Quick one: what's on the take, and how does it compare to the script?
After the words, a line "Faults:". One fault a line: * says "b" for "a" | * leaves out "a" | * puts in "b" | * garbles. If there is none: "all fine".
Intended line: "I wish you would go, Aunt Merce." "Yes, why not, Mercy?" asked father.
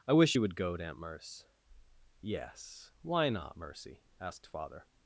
"I wish you would go, Aunt Merce." "Yes, why not, Mercy?" asked father.
Faults:
all fine